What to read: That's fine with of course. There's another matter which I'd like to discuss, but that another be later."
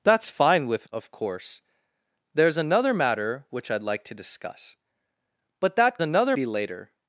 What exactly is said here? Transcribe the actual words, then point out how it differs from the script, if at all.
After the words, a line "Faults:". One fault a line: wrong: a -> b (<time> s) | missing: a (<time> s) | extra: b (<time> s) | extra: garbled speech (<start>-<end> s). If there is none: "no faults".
That's fine with of course. There's another matter which I'd like to discuss, but that another be later."
Faults:
no faults